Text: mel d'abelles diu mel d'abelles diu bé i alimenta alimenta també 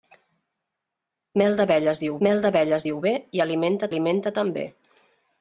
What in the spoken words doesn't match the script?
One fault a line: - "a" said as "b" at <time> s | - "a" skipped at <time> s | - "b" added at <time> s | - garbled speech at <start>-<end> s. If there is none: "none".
none